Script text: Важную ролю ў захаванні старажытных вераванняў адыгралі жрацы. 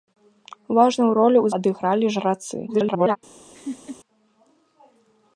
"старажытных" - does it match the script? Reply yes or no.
no